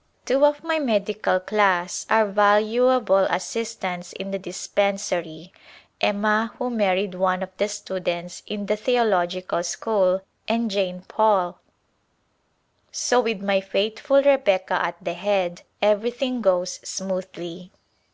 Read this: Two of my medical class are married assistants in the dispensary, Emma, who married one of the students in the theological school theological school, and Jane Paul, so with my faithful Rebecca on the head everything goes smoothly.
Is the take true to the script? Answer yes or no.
no